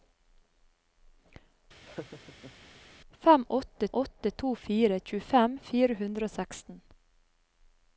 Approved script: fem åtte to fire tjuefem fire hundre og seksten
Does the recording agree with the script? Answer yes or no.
no